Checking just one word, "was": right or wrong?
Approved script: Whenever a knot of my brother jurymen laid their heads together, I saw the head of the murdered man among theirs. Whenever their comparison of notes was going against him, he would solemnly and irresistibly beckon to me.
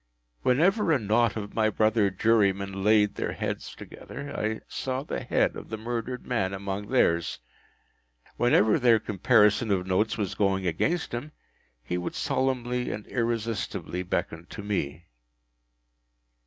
right